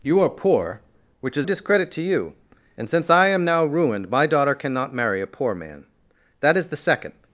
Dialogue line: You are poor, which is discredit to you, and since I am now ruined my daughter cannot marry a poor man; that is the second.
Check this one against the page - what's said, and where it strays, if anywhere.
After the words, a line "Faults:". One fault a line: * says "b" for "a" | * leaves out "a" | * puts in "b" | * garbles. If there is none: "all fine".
You are poor, which is discredit to you, and since I am now ruined my daughter cannot marry a poor man; that is the second.
Faults:
all fine